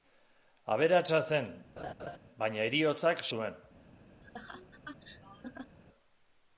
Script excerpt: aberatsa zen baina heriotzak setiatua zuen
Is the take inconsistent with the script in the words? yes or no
yes